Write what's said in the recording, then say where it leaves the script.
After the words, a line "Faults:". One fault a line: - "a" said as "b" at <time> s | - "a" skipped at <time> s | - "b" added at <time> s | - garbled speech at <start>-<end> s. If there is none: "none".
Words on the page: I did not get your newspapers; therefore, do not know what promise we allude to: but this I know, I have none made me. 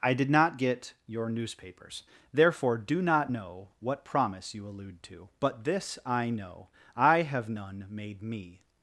I did not get your newspapers; therefore, do not know what promise you allude to: but this I know, I have none made me.
Faults:
- "we" said as "you" at 4.5 s